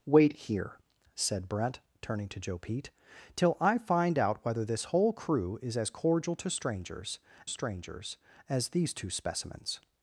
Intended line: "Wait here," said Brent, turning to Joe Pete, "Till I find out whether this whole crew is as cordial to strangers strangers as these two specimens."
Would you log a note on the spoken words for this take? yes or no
no